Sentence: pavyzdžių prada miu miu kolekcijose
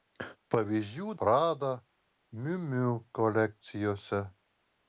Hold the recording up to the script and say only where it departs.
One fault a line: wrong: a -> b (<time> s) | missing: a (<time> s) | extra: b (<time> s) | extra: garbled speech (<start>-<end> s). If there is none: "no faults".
no faults